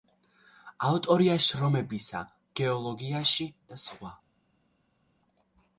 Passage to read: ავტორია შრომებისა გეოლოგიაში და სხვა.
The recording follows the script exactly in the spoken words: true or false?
true